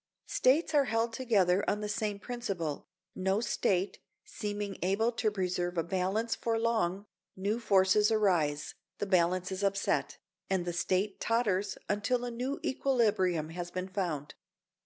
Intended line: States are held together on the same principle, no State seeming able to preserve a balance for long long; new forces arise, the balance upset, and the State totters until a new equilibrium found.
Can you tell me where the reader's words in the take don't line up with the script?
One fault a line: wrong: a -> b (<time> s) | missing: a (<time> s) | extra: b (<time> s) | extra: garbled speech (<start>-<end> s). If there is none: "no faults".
missing: long (7.0 s)
extra: is (9.5 s)
extra: has been (13.5 s)